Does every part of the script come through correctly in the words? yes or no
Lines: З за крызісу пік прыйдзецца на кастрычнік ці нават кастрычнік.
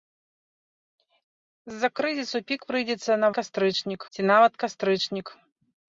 yes